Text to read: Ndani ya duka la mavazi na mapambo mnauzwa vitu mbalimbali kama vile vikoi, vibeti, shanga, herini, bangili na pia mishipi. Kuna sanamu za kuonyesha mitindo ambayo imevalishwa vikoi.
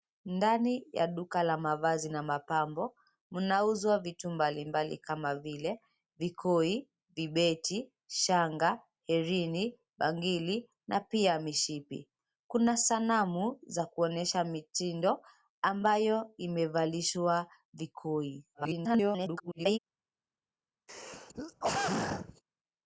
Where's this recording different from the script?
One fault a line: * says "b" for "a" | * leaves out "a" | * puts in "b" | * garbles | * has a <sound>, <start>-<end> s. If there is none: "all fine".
* garbles
* has a throat clearing, 20.9-22.4 s